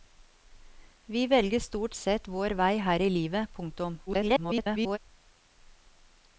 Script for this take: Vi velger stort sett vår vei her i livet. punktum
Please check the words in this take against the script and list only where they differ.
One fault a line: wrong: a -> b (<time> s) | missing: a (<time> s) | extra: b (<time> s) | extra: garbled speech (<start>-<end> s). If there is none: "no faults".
extra: garbled speech (4.1-5.0 s)